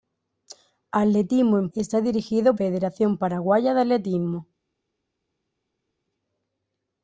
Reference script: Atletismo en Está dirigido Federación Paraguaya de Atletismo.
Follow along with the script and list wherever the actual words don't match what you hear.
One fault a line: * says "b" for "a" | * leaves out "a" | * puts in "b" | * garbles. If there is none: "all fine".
all fine